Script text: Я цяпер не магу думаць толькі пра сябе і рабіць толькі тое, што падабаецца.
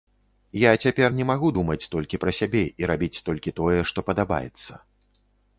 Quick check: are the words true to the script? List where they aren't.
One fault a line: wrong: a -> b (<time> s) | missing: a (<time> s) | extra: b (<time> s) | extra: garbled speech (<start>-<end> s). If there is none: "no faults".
no faults